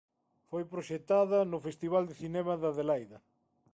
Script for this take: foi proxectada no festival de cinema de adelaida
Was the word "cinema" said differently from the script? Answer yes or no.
no